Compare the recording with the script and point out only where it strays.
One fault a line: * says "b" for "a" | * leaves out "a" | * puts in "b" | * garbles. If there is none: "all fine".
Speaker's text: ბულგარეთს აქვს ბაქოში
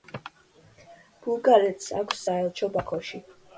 * puts in "საელჩო"